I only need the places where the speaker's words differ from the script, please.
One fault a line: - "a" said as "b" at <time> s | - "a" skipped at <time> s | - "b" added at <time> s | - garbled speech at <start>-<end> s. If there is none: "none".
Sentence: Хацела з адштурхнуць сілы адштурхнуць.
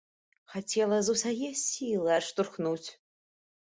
- "адштурхнуць" said as "усяе" at 1.2 s